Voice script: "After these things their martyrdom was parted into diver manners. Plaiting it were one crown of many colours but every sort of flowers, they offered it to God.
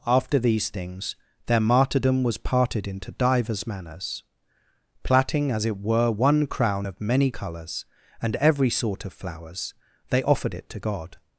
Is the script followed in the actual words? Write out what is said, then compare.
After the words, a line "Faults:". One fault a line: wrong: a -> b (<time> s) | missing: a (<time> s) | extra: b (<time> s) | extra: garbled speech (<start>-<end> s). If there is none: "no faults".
"After these things their martyrdom was parted into divers manners. Plaiting as it were one crown of many colours and every sort of flowers, they offered it to God.
Faults:
wrong: diver -> divers (3.1 s)
extra: as (5.5 s)
wrong: but -> and (8.2 s)